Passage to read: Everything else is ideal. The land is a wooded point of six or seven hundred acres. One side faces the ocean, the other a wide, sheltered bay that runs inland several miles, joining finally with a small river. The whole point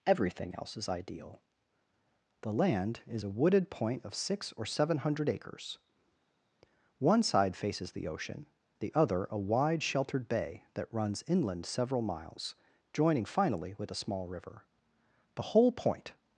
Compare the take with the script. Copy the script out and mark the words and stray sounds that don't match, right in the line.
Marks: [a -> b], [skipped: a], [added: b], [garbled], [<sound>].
Everything else is ideal. The land is a wooded point of six or seven hundred acres. One side faces the ocean, the other a wide, sheltered bay that runs inland several miles, joining finally with a small river. The whole point